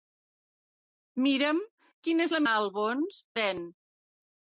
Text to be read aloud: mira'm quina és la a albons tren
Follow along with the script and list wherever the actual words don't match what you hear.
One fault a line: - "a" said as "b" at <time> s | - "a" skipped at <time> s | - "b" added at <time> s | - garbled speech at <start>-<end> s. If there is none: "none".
none